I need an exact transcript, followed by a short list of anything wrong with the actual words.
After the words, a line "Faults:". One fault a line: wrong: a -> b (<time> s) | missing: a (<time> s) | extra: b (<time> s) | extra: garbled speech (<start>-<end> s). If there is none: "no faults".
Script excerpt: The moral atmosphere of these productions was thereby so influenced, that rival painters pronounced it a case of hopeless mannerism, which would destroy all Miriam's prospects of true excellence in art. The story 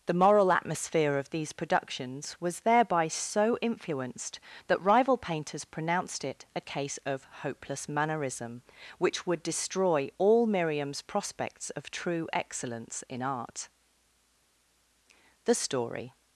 The moral atmosphere of these productions was thereby so influenced, that rival painters pronounced it a case of hopeless mannerism, which would destroy all Miriam's prospects of true excellence in art. The story
Faults:
no faults